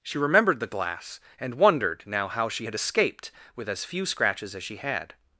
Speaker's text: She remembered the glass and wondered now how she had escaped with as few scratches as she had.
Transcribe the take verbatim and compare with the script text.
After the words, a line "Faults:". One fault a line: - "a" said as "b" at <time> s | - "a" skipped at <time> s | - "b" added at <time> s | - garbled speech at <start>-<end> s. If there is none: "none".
She remembered the glass and wondered now how she had escaped with as few scratches as she had.
Faults:
none